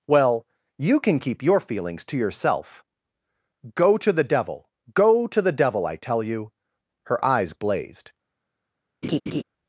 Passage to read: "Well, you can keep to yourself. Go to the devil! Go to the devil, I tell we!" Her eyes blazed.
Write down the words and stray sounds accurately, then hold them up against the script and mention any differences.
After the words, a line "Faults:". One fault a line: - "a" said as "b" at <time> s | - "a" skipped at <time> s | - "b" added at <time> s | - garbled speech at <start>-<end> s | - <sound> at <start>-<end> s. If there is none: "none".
"Well, you can keep your feelings to yourself. Go to the devil! Go to the devil, I tell you!" Her eyes blazed.
Faults:
- "your feelings" added at 1.4 s
- "we" said as "you" at 6.2 s
- laugh at 9.0-9.4 s